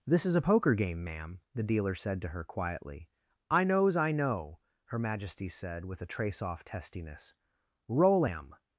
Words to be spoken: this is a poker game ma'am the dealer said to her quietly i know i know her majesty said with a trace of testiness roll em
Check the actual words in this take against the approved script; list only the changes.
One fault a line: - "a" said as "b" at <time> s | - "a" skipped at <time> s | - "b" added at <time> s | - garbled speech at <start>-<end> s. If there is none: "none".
- "know" said as "knows" at 3.6 s
- "of" said as "off" at 6.4 s